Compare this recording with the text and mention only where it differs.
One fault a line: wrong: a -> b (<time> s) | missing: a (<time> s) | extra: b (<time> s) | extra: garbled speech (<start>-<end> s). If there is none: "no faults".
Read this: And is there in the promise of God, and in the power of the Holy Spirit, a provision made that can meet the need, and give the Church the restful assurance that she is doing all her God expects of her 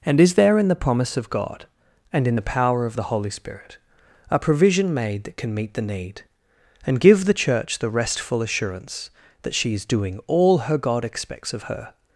no faults